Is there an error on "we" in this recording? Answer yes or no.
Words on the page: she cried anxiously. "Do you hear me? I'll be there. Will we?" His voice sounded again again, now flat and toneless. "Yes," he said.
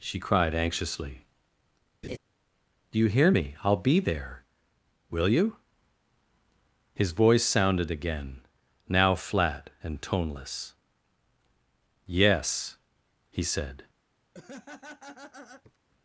yes